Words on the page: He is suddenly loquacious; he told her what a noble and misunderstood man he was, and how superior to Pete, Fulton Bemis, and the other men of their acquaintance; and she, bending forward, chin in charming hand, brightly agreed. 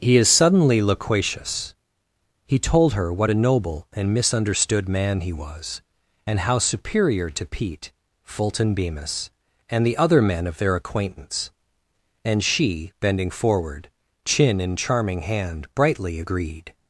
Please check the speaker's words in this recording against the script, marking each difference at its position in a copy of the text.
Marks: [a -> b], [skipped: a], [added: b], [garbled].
He is suddenly loquacious; he told her what a noble and misunderstood man he was, and how superior to Pete, Fulton Bemis, and the other men of their acquaintance; and she, bending forward, chin in charming hand, brightly agreed.